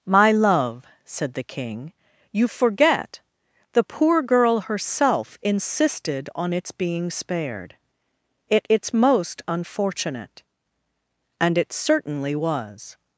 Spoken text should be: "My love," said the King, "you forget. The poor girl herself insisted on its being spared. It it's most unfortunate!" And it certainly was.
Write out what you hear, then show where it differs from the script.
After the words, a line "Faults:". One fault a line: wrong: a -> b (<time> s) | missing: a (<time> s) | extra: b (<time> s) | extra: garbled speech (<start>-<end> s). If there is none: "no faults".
"My love," said the King, "you forget. The poor girl herself insisted on its being spared. It it's most unfortunate!" And it certainly was.
Faults:
no faults